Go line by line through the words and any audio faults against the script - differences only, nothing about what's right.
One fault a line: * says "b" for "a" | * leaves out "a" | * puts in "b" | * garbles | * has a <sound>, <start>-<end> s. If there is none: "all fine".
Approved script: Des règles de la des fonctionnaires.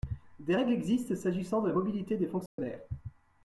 * puts in "existent s'agissant"
* puts in "mobilité"
* has a dropout, 2.5-2.6 s